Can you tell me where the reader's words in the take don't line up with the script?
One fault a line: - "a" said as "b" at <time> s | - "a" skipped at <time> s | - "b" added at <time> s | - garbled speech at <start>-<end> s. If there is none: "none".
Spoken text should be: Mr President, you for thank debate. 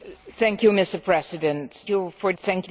none